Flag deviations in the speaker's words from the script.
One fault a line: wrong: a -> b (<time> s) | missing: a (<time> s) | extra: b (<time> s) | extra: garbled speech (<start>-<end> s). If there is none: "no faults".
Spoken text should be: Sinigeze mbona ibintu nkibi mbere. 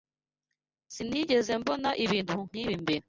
no faults